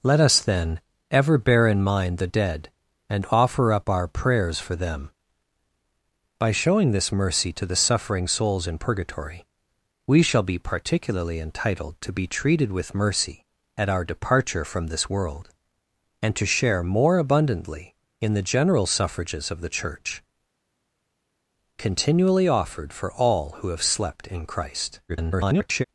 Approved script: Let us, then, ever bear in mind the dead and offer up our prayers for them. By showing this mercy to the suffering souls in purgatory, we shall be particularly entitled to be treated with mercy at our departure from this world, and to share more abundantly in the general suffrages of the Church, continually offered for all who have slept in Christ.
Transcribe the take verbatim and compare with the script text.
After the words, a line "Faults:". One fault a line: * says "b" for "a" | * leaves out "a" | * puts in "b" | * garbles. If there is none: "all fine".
Let us, then, ever bear in mind the dead and offer up our prayers for them. By showing this mercy to the suffering souls in purgatory, we shall be particularly entitled to be treated with mercy at our departure from this world, and to share more abundantly in the general suffrages of the Church, continually offered for all who have slept in Christ. [garbled]
Faults:
* garbles